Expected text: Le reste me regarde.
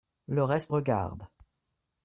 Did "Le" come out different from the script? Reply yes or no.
no